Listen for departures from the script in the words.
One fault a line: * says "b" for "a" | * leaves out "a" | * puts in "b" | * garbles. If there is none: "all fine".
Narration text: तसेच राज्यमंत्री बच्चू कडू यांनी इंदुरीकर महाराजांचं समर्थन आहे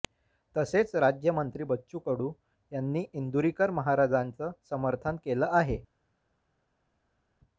* puts in "केलं"